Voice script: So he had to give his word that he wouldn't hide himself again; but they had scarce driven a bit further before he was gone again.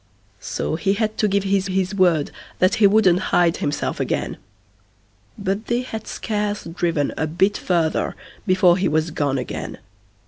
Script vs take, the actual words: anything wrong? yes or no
yes